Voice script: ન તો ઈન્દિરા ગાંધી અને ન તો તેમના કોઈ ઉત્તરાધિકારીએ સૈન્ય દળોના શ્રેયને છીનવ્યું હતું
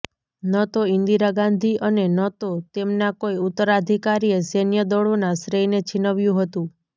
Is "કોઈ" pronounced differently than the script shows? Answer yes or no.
no